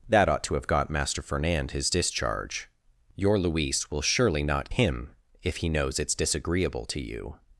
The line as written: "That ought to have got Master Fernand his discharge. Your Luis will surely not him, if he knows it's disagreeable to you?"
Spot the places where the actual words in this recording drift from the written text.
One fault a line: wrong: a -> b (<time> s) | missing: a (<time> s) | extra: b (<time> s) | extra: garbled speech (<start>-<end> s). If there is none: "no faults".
no faults